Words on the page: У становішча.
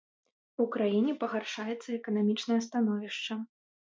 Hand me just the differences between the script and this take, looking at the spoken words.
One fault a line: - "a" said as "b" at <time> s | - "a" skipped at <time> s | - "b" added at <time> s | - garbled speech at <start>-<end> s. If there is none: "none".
- "краіне пагаршаецца эканамічнае" added at 0.8 s